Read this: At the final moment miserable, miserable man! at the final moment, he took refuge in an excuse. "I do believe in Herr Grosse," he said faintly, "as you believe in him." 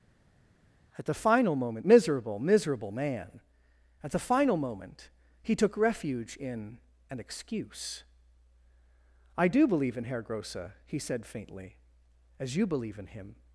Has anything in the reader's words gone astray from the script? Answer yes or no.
no